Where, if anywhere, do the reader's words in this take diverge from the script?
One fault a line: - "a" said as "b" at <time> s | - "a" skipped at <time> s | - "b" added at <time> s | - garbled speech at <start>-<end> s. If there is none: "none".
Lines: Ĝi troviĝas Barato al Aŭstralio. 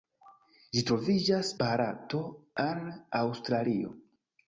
none